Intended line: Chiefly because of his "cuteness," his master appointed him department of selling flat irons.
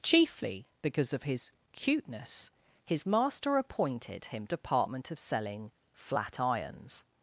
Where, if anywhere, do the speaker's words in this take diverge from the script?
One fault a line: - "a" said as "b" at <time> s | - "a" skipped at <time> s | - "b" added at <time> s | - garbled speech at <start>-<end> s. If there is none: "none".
none